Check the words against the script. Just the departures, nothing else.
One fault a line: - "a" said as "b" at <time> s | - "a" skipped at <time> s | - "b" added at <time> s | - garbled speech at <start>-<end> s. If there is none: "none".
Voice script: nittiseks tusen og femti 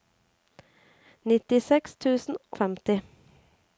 none